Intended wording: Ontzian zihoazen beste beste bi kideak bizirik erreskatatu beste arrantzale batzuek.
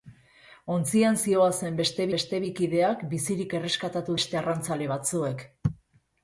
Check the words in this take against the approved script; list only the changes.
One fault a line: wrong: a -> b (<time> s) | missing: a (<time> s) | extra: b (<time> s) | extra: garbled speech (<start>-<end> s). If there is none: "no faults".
no faults